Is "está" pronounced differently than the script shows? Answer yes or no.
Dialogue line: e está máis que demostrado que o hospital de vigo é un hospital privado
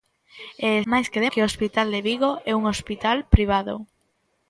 yes